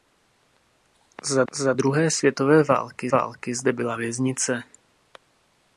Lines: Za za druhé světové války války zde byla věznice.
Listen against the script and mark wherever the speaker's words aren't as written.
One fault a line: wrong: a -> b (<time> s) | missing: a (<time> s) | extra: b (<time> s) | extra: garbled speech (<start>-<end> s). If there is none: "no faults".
no faults